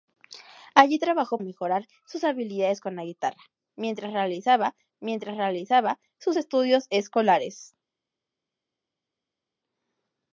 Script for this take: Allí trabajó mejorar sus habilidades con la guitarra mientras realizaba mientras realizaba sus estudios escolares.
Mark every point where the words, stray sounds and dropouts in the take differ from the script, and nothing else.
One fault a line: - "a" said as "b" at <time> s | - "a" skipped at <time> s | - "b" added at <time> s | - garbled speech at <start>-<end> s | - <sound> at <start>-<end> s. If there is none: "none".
none